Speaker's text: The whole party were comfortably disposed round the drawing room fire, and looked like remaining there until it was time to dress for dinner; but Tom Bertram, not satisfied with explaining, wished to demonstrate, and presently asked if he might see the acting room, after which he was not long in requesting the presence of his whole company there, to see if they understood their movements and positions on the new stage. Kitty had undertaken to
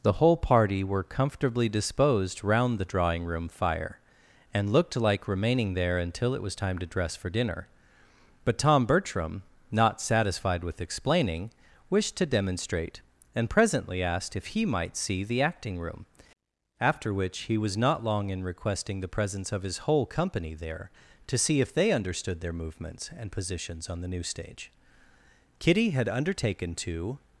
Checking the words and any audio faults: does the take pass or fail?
pass